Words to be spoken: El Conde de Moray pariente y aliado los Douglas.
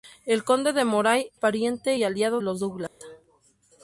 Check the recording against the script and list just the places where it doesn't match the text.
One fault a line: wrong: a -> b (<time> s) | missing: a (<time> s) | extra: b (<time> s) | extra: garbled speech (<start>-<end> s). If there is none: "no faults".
no faults